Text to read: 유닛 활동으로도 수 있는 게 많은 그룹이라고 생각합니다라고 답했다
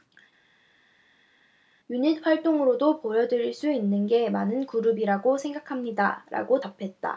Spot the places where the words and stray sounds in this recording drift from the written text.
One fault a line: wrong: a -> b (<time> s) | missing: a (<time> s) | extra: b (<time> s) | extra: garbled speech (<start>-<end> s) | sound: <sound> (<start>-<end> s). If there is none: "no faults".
extra: 보여드릴 (3.0 s)